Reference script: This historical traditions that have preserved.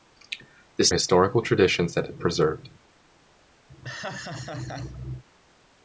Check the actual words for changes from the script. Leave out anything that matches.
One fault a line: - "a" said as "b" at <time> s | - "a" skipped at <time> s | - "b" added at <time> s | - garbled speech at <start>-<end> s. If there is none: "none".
none